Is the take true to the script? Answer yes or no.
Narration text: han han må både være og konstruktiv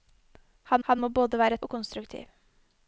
yes